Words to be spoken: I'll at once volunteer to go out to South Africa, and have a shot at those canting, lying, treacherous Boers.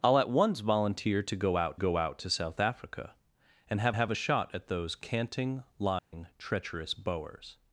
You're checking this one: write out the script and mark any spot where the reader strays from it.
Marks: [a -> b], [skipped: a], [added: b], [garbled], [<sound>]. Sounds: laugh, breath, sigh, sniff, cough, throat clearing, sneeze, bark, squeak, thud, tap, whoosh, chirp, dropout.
I'll at once volunteer to go out [added: go out] to South Africa, and have [added: have] a shot at those canting, lying, [dropout] treacherous Boers.